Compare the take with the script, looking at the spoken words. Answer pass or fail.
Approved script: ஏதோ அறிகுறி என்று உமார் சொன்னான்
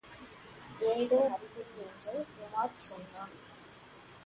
pass